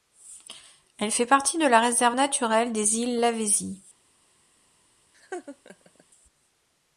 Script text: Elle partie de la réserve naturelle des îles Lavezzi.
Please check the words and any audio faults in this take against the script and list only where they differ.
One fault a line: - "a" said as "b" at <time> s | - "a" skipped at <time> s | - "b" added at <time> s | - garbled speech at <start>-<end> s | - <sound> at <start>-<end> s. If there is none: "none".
- "fait" added at 1.1 s
- laugh at 5.1-6.0 s